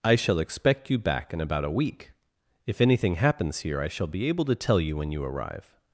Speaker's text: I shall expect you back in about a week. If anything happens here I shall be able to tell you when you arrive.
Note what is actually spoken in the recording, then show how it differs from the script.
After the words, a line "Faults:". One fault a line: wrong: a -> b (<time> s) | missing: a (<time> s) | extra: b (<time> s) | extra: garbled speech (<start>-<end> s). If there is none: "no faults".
I shall expect you back in about a week. If anything happens here I shall be able to tell you when you arrive.
Faults:
no faults